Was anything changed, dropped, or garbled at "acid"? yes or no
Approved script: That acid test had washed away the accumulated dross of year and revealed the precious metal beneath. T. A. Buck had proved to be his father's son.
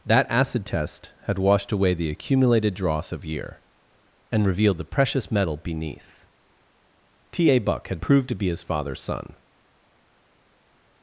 no